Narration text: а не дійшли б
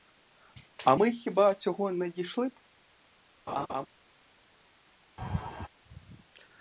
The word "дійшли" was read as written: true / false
true